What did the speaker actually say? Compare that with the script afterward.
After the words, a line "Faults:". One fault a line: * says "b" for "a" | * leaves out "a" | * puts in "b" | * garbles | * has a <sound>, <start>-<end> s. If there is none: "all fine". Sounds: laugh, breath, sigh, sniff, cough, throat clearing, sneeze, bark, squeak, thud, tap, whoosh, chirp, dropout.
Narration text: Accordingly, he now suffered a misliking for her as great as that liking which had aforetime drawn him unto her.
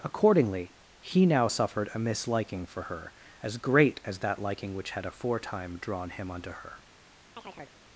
Accordingly, he now suffered a misliking for her as great as that liking which had aforetime drawn him unto her.
Faults:
* has a chirp, 7.4-7.8 s